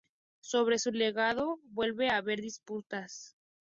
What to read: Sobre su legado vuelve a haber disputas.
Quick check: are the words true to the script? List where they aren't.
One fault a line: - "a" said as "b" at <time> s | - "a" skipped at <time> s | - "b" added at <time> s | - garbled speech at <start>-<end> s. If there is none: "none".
none